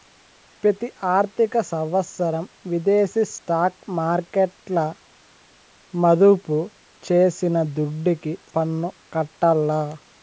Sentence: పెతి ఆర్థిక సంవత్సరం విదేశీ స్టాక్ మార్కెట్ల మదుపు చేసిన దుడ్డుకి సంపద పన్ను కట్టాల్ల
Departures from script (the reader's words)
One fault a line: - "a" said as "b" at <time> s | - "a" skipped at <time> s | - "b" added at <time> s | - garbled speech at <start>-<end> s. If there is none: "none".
- "సంపద" skipped at 8.3 s